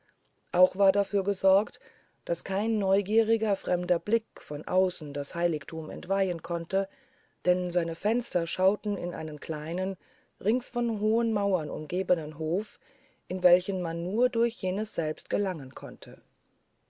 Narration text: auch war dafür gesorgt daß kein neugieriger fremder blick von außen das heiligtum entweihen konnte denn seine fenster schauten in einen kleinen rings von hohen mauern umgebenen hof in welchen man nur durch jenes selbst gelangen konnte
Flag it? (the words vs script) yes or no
no